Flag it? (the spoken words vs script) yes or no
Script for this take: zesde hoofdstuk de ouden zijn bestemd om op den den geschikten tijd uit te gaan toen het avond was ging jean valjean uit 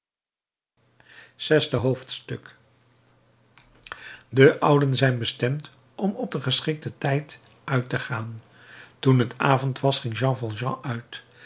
yes